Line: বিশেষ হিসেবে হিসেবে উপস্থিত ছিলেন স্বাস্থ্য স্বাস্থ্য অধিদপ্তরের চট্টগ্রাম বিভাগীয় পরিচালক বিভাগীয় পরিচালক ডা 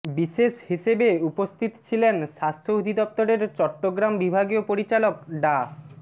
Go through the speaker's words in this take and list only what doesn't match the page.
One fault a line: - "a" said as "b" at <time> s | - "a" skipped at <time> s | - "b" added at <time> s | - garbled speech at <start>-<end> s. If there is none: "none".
- "হিসেবে" skipped at 1.1 s
- "স্বাস্থ্য" skipped at 2.7 s
- "বিভাগীয় পরিচালক" skipped at 5.1 s